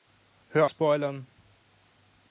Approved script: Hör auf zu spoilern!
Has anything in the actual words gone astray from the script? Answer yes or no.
yes